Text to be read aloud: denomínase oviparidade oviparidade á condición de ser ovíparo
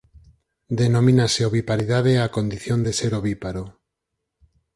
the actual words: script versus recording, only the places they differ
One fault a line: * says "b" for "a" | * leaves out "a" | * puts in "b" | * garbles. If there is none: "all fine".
* leaves out "oviparidade"